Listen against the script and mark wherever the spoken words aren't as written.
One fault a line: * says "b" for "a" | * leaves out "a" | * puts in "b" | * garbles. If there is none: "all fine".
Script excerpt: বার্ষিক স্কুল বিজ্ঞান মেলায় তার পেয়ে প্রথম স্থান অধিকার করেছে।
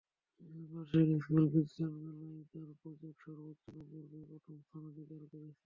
* puts in "প্রজেক্ট সর্বোচ্চ নম্বর"